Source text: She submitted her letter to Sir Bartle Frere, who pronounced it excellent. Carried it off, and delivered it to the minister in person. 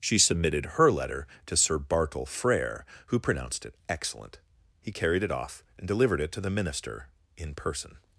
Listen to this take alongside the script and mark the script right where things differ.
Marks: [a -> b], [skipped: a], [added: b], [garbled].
She submitted her letter to Sir Bartle Frere, who pronounced it excellent. [added: He] Carried it off, and delivered it to the minister in person.